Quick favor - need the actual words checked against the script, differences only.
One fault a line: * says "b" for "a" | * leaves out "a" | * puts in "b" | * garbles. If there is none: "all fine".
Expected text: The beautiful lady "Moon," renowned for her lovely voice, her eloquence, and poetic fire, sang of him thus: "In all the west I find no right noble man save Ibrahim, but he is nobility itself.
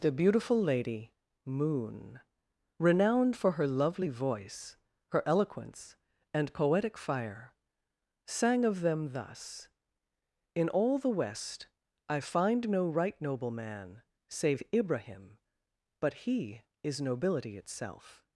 * says "them" for "him"